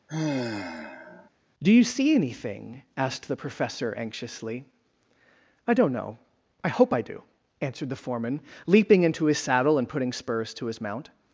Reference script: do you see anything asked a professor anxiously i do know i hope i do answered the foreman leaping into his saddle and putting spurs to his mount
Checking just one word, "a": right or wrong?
wrong